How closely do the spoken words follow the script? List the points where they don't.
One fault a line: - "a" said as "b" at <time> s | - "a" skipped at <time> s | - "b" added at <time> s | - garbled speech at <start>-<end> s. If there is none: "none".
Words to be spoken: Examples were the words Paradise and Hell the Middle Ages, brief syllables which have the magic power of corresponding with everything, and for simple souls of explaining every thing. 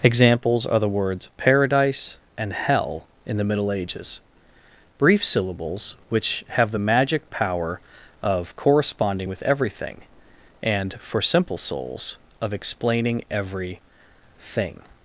- "were" said as "are" at 0.7 s
- "in" added at 3.3 s